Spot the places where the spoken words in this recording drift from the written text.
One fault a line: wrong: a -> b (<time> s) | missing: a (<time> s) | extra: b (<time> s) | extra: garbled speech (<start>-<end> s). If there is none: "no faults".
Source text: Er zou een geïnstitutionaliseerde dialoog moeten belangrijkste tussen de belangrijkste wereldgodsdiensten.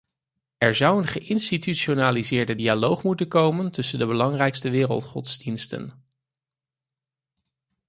wrong: belangrijkste -> komen (3.3 s)